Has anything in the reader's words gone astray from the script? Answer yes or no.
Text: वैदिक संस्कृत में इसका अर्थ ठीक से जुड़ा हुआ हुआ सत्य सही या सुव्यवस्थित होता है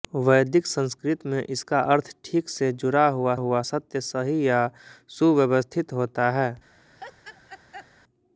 no